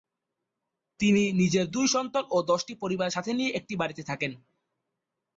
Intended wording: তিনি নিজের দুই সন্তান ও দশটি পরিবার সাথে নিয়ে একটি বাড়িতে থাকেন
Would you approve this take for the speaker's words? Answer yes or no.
yes